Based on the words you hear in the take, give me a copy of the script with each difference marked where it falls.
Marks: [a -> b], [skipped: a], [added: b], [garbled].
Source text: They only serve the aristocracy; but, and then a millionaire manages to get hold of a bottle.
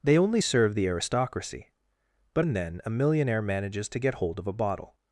They only serve the aristocracy; but, and then a millionaire manages to get hold of a bottle.